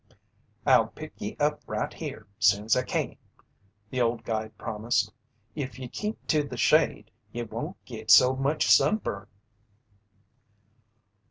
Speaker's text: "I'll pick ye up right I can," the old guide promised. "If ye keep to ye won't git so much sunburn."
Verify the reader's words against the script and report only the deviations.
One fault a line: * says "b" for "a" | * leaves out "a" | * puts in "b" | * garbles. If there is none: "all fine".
* puts in "here soon's"
* puts in "the shade"